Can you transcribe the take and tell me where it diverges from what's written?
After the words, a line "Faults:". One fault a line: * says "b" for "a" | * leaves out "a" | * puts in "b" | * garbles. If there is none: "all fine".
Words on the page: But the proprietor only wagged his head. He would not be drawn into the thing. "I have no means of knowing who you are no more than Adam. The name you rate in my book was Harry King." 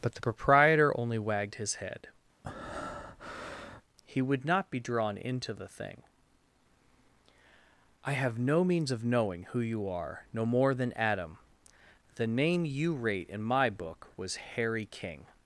But the proprietor only wagged his head. He would not be drawn into the thing. "I have no means of knowing who you are no more than Adam. The name you rate in my book was Harry King."
Faults:
all fine